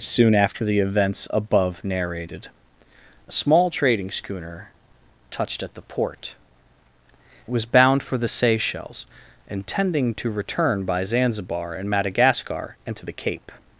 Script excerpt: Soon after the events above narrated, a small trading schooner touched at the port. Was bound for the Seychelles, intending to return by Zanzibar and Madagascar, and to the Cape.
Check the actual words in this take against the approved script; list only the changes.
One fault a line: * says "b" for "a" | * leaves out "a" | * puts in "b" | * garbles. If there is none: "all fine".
all fine